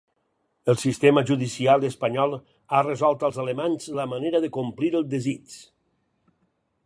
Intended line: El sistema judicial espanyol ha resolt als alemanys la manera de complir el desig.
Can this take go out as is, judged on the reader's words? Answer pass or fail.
pass